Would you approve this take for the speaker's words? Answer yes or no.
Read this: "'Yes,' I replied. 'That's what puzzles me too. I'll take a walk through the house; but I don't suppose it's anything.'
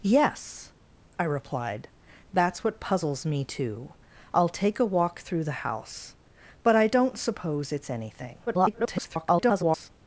no